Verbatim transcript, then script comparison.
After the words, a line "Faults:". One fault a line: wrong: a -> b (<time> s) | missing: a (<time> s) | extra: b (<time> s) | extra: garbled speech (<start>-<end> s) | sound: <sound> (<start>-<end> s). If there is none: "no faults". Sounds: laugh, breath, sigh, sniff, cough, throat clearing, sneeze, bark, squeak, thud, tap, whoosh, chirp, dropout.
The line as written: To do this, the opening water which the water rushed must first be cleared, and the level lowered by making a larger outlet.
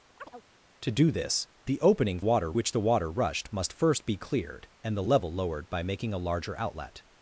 To do this, the opening water which the water rushed must first be cleared, and the level lowered by making a larger outlet.
Faults:
sound: chirp (0.2-0.4 s)